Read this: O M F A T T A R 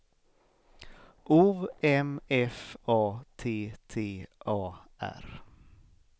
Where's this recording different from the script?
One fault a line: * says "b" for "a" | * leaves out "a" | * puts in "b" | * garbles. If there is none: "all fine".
all fine